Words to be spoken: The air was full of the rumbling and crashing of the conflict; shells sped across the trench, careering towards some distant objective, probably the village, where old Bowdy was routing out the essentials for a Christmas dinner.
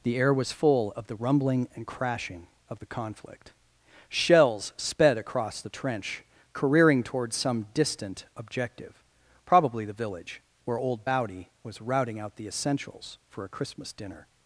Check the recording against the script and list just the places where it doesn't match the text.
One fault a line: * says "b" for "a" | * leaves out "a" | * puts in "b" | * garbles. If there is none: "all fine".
all fine